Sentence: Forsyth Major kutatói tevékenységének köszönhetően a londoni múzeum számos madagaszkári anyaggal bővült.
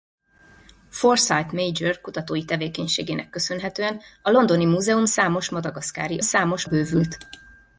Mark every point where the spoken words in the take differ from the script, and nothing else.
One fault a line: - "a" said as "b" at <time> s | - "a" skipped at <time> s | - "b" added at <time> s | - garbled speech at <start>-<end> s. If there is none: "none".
- "anyaggal" said as "számos" at 6.2 s